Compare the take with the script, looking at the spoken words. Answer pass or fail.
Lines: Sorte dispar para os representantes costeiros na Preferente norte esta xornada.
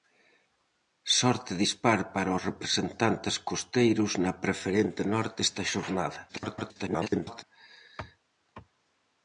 fail